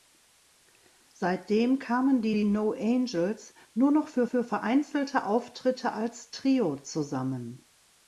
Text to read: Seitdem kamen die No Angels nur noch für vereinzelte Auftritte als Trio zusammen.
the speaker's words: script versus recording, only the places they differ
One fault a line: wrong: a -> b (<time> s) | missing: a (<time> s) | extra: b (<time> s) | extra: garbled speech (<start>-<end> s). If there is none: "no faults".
extra: die (2.3 s)
extra: für (4.2 s)